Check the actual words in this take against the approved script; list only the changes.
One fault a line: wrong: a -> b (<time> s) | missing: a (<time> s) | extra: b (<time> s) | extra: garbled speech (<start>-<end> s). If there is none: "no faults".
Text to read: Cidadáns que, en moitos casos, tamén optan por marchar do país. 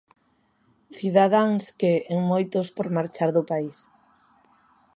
missing: casos tamén optan (2.7 s)